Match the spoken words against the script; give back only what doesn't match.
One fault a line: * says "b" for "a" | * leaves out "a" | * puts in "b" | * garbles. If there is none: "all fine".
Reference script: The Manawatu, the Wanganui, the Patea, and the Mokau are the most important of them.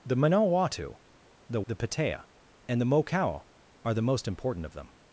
* leaves out "Wanganui"